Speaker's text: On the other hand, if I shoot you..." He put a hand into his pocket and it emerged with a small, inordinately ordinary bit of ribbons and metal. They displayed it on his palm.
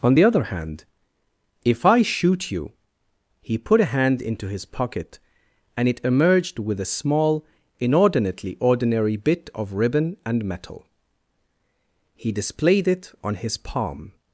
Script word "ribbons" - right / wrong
wrong